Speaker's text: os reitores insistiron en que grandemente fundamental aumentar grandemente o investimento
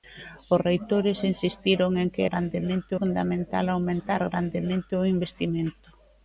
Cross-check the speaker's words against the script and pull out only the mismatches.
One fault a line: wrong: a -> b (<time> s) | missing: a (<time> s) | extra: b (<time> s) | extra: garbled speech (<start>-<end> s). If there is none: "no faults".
no faults